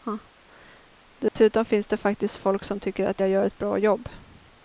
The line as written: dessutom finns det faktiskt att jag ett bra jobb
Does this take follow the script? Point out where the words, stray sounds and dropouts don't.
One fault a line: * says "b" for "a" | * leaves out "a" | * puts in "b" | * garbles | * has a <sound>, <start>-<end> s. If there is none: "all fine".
* has a dropout, 1.3-1.4 s
* puts in "folk som tycker"
* puts in "gör"